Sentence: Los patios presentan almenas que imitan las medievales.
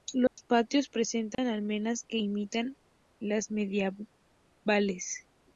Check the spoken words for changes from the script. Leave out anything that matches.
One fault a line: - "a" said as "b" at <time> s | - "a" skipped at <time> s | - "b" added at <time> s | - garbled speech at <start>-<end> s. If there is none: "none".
none